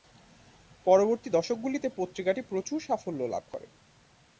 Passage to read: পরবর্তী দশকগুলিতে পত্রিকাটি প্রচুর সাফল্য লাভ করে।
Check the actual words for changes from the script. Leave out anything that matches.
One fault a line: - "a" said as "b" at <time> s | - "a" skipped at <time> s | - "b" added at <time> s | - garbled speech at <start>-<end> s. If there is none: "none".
none